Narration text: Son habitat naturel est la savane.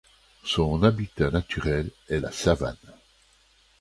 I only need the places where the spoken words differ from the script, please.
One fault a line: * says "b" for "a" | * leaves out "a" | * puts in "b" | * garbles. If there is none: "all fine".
all fine